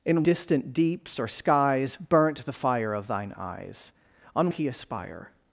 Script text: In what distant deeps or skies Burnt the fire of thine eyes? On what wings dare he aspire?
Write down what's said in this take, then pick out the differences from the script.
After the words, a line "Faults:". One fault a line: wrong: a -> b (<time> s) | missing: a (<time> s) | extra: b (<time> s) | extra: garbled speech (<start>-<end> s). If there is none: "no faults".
In distant deeps or skies Burnt the fire of thine eyes? On he aspire?
Faults:
missing: what (0.2 s)
missing: what wings dare (4.5 s)